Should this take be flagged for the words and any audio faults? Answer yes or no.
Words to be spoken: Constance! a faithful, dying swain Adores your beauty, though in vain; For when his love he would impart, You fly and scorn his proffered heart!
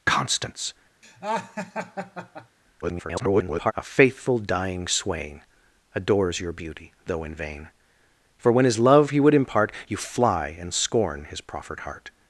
yes